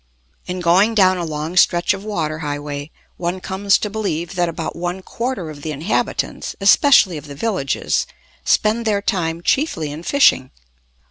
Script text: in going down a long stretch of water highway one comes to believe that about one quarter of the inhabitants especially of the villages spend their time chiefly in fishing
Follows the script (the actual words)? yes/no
yes